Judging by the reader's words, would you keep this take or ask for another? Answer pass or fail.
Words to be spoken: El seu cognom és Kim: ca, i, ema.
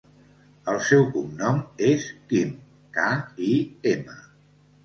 pass